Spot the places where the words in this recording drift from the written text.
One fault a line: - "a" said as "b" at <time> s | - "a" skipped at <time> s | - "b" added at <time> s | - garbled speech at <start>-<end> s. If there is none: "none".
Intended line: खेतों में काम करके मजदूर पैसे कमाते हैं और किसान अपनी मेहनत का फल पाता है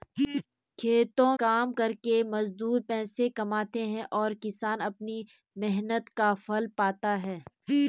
- "में" skipped at 1.4 s